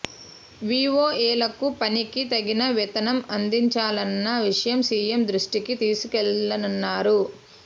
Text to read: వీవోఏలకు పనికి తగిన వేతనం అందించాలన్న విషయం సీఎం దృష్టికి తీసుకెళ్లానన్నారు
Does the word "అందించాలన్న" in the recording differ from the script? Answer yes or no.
no